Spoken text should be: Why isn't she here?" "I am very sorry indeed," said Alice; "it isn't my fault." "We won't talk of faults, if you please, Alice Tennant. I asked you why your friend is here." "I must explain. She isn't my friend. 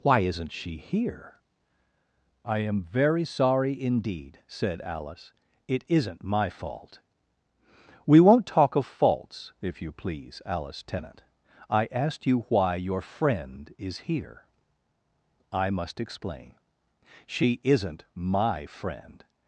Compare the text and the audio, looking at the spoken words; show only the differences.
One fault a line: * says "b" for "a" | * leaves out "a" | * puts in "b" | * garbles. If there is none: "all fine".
all fine